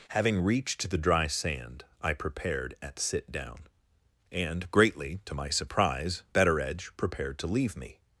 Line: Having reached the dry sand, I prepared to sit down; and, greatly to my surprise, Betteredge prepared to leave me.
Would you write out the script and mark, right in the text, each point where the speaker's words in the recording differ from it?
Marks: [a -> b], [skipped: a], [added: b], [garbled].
Having reached the dry sand, I prepared [to -> at] sit down; and, greatly to my surprise, Betteredge prepared to leave me.